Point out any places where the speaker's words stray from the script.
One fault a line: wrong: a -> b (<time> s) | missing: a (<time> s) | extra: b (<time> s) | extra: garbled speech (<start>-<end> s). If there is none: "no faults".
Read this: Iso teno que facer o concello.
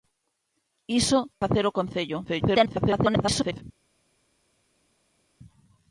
missing: teno que (1.2 s)
extra: garbled speech (2.2-3.6 s)